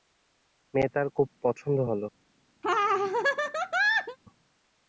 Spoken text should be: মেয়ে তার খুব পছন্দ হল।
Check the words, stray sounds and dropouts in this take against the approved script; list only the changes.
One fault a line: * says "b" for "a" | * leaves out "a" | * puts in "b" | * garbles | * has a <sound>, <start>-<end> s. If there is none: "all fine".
* has a laugh, 2.6-4.2 s